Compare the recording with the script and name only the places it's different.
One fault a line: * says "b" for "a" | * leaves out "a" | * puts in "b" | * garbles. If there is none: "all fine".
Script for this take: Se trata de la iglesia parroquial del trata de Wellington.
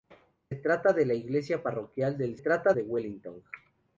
all fine